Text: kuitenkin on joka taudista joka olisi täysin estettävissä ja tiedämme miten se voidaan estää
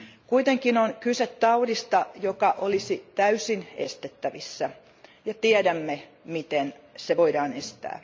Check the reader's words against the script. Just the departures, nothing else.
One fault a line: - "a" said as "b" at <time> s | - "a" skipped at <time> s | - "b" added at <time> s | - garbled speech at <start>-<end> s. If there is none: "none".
- "joka" said as "kyse" at 1.0 s